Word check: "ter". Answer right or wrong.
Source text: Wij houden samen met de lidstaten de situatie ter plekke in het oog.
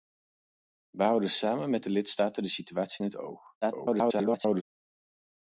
wrong